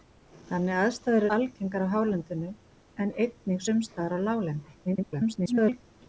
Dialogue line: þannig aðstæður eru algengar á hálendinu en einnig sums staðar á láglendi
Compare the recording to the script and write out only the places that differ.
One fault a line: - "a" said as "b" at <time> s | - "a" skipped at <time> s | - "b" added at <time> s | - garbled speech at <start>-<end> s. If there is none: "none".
- "eru" skipped at 1.2 s
- garbled speech at 4.8-5.8 s